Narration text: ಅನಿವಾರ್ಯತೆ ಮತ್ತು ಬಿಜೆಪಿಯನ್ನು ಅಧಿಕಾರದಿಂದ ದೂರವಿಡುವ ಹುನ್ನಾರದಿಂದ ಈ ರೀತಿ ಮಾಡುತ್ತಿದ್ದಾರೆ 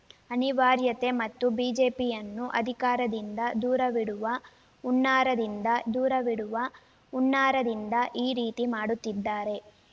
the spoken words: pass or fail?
fail